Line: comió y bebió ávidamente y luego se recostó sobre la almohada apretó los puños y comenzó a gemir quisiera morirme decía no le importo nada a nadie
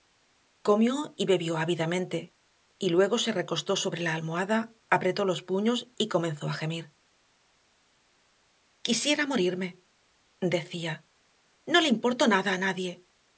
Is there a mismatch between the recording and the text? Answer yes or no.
no